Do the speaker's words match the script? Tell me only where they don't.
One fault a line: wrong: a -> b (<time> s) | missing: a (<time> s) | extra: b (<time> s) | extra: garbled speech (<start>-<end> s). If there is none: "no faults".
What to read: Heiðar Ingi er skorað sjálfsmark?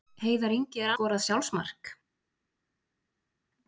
no faults